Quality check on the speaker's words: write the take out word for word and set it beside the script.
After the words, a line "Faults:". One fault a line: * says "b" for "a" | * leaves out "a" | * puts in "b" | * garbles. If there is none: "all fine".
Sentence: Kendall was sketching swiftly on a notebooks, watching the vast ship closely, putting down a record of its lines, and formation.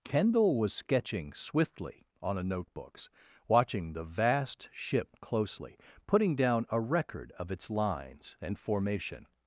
Kendall was sketching swiftly on a notebooks, watching the vast ship closely, putting down a record of its lines, and formation.
Faults:
all fine